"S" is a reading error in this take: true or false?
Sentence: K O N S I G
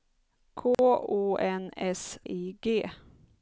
false